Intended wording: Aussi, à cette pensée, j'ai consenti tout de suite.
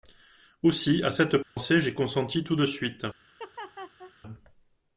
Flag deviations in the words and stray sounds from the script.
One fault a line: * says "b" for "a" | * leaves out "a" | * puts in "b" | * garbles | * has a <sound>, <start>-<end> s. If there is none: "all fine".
* has a dropout, 1.4-1.6 s
* has a laugh, 3.4-4.1 s